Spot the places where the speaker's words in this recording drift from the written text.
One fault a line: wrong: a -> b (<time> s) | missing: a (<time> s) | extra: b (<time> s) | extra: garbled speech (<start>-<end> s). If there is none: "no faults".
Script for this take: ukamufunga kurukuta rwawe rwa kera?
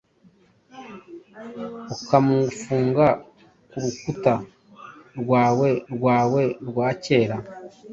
extra: rwawe (5.9 s)